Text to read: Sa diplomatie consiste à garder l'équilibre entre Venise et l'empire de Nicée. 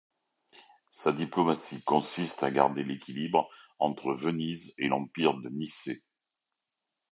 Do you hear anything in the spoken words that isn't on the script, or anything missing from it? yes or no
no